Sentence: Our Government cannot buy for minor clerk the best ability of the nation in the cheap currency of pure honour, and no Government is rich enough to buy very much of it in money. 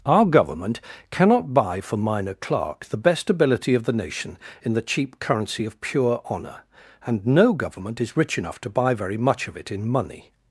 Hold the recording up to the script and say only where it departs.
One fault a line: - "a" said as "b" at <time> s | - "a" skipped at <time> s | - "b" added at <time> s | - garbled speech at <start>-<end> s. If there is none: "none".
none